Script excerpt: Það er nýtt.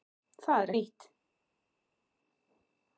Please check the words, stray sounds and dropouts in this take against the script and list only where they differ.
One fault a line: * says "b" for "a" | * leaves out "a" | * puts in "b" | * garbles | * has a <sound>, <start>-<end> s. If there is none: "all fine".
all fine